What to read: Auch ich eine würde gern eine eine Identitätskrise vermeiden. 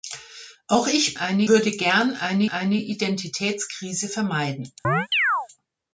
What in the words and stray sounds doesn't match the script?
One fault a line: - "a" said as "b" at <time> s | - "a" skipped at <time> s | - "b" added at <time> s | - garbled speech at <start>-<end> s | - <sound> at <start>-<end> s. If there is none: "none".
- chirp at 4.8-5.5 s